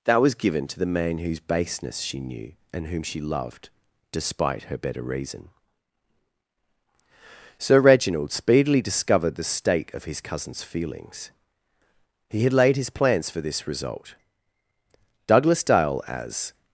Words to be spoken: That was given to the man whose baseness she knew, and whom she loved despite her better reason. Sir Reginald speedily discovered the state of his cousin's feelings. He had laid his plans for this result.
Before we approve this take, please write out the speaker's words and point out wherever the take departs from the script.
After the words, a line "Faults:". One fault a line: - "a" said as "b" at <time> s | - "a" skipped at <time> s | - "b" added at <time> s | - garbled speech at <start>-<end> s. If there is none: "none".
That was given to the man whose baseness she knew, and whom she loved despite her better reason. Sir Reginald speedily discovered the state of his cousin's feelings. He had laid his plans for this result. Douglas Dale, as
Faults:
- "Douglas Dale as" added at 15.3 s